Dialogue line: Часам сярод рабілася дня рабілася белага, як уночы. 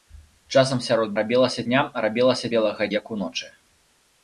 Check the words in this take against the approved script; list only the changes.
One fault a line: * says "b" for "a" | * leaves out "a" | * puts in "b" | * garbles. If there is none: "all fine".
all fine